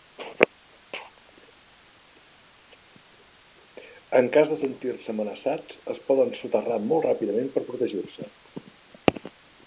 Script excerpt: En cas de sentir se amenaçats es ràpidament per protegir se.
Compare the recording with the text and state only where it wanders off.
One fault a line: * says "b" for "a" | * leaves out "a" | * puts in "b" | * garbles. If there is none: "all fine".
* puts in "poden soterrar molt"